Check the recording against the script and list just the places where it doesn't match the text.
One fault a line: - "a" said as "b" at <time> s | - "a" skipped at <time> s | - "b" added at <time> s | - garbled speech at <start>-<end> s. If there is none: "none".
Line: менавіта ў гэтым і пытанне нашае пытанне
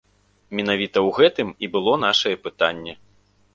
- "пытанне" said as "было" at 1.7 s